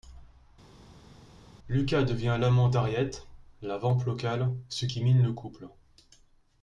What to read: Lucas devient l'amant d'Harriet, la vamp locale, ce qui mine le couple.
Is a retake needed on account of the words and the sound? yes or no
no